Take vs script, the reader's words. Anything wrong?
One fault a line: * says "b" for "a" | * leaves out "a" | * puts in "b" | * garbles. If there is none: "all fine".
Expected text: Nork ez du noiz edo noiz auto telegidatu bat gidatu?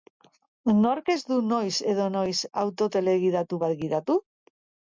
all fine